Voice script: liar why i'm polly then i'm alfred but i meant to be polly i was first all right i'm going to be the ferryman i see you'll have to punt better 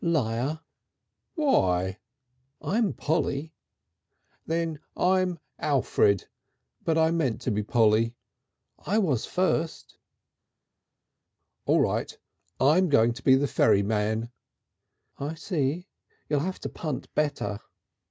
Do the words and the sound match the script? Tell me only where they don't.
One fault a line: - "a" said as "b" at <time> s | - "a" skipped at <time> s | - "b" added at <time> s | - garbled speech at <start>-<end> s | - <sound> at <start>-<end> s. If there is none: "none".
none